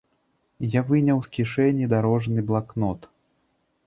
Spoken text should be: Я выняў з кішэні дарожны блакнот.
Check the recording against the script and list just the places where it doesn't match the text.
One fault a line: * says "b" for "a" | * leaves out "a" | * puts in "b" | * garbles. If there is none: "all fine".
all fine